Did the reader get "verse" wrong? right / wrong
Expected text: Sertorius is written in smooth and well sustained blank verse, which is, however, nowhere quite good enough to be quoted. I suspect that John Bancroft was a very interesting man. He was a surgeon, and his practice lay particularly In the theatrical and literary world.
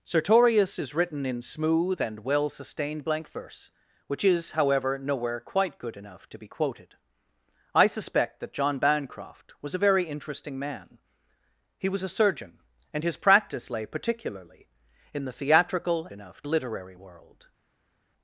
right